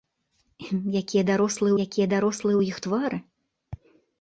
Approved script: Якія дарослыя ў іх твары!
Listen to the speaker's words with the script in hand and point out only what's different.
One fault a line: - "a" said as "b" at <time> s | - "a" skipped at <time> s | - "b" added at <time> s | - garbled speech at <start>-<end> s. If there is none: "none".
- "якія дарослыя" added at 1.8 s